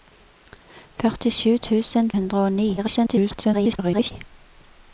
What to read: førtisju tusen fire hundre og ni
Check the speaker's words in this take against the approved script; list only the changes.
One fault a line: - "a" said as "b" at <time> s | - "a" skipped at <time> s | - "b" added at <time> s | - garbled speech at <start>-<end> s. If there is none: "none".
- "fire" skipped at 2.1 s
- garbled speech at 2.8-4.1 s